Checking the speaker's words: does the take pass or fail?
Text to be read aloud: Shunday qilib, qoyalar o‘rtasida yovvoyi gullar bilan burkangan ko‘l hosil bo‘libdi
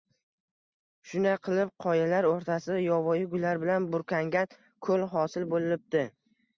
pass